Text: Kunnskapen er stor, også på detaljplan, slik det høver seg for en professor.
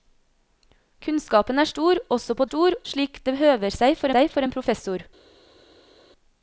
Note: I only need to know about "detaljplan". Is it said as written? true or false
false